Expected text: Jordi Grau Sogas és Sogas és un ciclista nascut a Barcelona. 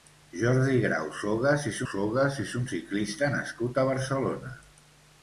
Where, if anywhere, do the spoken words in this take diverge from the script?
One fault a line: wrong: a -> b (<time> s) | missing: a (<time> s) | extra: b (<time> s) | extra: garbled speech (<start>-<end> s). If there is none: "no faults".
no faults